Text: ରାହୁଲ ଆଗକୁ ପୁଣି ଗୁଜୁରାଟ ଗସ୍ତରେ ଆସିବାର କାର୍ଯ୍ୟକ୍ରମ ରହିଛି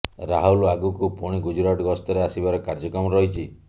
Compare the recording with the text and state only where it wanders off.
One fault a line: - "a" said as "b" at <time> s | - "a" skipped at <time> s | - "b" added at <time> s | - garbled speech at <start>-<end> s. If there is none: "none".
none